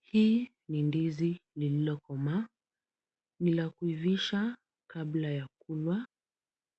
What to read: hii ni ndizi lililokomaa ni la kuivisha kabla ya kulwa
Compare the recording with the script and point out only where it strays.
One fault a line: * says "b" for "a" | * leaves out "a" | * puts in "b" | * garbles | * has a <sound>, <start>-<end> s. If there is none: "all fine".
all fine